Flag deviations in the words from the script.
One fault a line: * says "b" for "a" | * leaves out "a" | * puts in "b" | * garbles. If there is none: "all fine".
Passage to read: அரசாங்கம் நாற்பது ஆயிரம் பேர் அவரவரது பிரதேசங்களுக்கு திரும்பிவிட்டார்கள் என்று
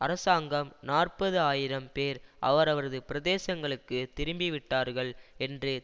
all fine